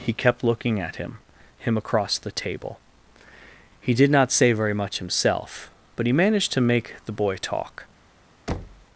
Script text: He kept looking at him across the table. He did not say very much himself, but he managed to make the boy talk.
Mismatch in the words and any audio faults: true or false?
true